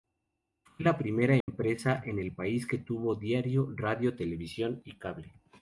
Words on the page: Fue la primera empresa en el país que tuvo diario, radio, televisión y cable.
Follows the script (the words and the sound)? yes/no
no